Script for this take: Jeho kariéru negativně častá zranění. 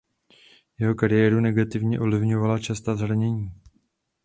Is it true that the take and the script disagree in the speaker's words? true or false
true